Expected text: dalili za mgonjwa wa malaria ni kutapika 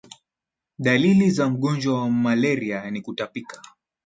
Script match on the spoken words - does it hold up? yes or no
yes